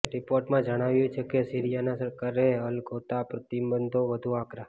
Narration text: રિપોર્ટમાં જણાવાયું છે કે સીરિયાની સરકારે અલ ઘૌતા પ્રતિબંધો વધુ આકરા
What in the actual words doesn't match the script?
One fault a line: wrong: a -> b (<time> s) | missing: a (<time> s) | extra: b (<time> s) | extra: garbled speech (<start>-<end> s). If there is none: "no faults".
no faults